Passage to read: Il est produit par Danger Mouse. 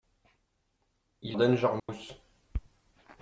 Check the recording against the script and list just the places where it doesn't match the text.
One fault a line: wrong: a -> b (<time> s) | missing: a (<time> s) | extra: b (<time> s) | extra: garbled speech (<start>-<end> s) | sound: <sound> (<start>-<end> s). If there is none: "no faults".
missing: est produit par (1.4 s)
sound: dropout (1.8-1.9 s)